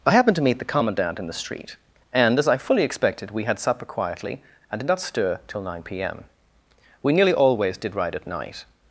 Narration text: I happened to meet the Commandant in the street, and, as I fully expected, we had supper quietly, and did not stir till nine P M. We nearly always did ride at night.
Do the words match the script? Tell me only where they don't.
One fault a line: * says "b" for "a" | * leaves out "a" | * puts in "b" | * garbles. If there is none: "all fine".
all fine